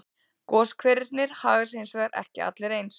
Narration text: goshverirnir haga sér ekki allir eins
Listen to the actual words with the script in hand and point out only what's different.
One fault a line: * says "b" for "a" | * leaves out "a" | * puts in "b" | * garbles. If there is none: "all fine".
* puts in "hins vegar"